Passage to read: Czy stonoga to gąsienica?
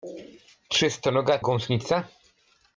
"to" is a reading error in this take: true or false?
true